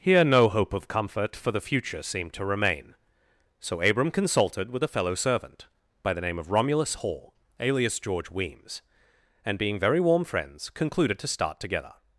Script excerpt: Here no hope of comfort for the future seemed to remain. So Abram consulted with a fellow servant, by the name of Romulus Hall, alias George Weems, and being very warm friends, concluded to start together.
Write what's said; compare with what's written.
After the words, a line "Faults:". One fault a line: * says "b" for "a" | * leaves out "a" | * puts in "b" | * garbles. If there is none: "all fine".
Here no hope of comfort for the future seemed to remain. So Abram consulted with a fellow servant, by the name of Romulus Hall, alias George Weems, and being very warm friends, concluded to start together.
Faults:
all fine